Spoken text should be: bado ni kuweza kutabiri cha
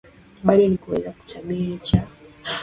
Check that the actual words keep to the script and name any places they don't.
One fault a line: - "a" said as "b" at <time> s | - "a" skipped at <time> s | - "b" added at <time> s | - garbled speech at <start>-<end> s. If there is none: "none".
none